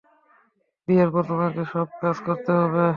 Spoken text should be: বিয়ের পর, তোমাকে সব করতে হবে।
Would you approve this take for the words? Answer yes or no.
no